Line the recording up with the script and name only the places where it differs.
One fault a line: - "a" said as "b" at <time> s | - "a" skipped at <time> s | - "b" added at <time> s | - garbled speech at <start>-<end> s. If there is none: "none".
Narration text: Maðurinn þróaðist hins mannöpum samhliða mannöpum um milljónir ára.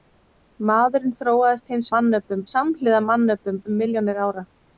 none